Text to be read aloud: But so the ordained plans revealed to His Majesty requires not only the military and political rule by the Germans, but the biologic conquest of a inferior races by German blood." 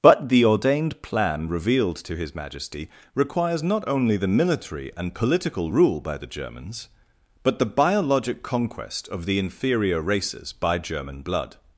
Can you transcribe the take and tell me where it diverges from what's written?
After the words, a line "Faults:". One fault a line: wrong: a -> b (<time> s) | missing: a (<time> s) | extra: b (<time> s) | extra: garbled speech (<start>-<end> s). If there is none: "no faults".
But the ordained plan revealed to His Majesty requires not only the military and political rule by the Germans, but the biologic conquest of the inferior races by German blood."
Faults:
missing: so (0.3 s)
wrong: plans -> plan (1.0 s)
wrong: a -> the (9.2 s)